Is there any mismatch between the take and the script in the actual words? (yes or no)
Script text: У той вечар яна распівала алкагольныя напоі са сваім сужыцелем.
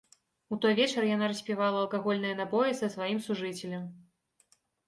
no